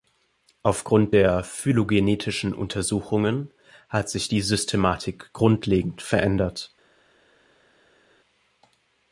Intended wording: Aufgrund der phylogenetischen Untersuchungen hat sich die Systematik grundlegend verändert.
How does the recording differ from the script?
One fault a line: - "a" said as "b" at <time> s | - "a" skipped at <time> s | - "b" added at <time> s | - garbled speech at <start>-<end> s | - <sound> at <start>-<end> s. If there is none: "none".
none